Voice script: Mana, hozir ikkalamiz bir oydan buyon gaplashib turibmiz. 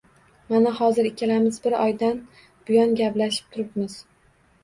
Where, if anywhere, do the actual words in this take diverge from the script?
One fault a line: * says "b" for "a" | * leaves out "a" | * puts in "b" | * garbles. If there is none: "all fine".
all fine